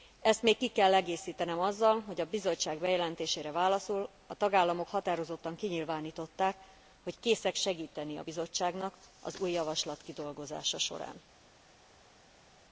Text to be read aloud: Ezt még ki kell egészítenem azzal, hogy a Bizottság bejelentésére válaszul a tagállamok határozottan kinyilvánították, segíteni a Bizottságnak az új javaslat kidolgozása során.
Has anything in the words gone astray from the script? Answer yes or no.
yes